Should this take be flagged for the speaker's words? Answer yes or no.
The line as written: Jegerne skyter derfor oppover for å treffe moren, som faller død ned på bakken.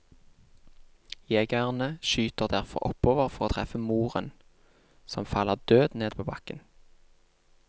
no